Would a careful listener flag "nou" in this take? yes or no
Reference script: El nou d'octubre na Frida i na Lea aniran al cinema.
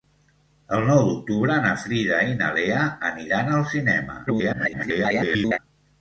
no